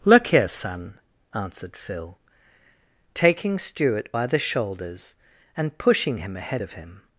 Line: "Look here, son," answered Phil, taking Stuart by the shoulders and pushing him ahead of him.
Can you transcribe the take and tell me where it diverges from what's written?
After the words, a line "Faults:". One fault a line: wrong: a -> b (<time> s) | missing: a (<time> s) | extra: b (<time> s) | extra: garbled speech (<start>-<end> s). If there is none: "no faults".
"Look here, son," answered Phil, taking Stuart by the shoulders and pushing him ahead of him.
Faults:
no faults